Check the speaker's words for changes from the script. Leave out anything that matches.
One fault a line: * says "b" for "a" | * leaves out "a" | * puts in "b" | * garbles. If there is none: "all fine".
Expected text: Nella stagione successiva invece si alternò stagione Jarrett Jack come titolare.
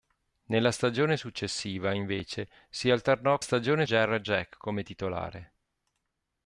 all fine